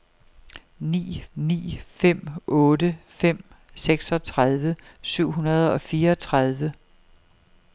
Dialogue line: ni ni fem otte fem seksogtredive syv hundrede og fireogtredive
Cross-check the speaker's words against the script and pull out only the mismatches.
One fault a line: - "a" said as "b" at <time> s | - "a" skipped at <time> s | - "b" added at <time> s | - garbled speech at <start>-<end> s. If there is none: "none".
none